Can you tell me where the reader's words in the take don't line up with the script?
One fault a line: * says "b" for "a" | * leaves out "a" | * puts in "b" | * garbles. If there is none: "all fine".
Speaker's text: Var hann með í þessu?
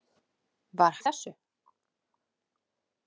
* leaves out "hann með"